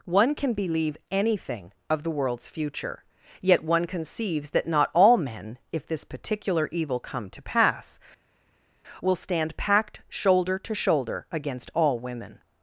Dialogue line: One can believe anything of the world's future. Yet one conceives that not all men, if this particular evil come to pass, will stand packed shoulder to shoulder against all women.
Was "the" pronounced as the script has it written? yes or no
yes